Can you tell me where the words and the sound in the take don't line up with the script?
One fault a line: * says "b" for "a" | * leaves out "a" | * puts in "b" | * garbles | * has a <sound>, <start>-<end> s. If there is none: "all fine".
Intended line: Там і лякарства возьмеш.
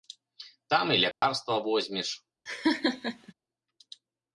* has a dropout, 1.1-1.2 s
* has a laugh, 2.5-3.3 s